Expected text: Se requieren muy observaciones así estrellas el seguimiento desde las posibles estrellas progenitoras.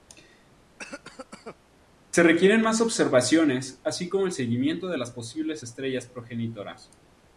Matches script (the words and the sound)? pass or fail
fail